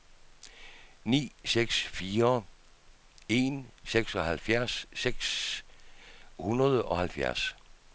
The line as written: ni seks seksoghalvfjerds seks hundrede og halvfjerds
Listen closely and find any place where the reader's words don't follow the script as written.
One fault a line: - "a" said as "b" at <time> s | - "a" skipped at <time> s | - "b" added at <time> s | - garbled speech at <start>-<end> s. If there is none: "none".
- "fire en" added at 2.0 s